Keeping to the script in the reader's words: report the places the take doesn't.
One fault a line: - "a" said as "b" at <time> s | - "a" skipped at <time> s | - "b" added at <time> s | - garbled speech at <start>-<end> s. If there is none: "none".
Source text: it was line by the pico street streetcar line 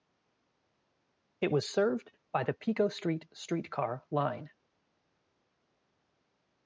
- "line" said as "served" at 1.7 s